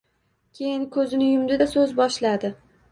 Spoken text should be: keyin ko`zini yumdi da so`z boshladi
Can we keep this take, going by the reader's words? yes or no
yes